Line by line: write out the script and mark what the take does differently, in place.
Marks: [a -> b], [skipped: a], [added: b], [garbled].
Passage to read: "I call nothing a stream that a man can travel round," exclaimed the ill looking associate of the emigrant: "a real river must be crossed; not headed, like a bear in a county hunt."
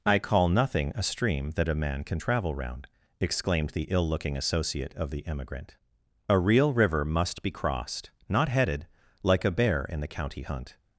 "I call nothing a stream that a man can travel round," exclaimed the ill looking associate of the emigrant: "a real river must be crossed; not headed, like a bear in [a -> the] county hunt."